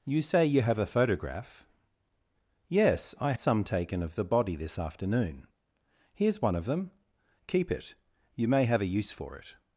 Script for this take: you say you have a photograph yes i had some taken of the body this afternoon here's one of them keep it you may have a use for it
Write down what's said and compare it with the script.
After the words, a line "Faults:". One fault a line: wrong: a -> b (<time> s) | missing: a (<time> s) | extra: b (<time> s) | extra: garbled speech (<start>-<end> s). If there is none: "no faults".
you say you have a photograph yes i some taken of the body this afternoon here's one of them keep it you may have a use for it
Faults:
missing: had (3.3 s)